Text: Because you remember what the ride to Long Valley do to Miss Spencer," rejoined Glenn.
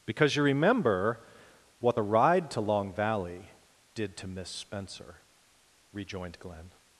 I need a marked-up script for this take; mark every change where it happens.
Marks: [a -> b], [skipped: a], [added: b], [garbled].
Because you remember what the ride to Long Valley [do -> did] to Miss Spencer," rejoined Glenn.